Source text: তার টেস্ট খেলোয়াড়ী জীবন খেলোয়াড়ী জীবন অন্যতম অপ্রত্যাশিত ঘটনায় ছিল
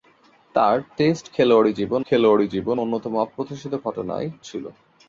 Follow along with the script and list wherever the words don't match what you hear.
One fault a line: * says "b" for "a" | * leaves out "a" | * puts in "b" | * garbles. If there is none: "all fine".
all fine